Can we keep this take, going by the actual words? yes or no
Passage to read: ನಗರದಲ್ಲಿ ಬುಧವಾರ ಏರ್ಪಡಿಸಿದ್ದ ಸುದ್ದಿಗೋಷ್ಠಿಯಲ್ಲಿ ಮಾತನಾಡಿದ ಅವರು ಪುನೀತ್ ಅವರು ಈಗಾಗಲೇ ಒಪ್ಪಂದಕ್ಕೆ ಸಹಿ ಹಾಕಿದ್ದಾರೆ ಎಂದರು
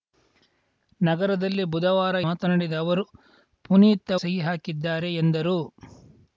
no